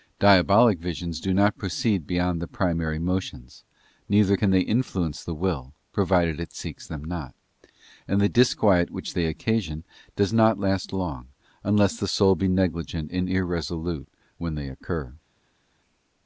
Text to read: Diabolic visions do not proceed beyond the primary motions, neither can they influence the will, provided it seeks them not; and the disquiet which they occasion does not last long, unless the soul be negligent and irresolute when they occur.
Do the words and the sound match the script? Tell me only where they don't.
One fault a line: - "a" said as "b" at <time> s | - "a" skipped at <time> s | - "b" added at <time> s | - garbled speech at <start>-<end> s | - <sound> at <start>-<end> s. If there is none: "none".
none